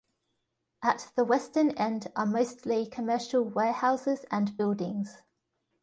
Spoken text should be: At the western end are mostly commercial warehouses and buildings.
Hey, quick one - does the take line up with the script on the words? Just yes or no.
yes